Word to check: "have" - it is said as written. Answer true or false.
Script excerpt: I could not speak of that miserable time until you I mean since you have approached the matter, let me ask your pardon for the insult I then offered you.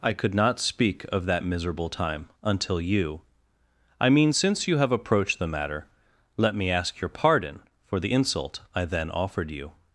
true